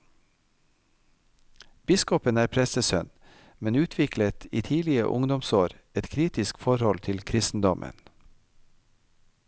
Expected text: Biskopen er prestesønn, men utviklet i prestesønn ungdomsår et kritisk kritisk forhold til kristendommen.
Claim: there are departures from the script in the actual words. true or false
true